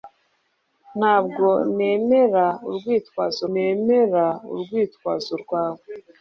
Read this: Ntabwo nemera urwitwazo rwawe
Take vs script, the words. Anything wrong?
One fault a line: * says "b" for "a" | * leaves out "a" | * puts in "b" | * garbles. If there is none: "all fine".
* puts in "nemera urwitwazo"